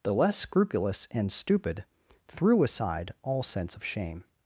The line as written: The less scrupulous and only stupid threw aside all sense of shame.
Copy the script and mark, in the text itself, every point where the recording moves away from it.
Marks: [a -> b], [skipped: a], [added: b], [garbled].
The less scrupulous and [skipped: only] stupid threw aside all sense of shame.